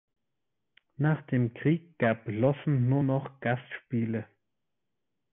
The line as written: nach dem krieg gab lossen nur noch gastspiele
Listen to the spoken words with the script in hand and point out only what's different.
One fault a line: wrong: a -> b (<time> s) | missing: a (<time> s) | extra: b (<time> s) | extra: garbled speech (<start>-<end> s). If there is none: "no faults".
no faults